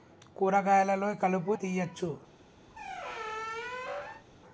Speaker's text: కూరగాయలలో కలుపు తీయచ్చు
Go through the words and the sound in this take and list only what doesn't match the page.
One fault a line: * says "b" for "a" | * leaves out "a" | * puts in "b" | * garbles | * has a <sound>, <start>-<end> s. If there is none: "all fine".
* has a squeak, 2.7-4.2 s